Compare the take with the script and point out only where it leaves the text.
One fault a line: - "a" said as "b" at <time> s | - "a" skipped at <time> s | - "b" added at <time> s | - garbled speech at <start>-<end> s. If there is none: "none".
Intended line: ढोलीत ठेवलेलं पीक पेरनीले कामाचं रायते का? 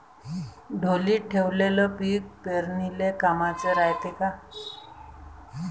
none